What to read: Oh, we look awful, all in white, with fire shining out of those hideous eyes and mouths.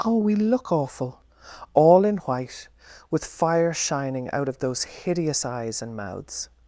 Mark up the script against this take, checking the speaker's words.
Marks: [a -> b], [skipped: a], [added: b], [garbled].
Oh, we look awful, all in white, with fire shining out of those hideous eyes and mouths.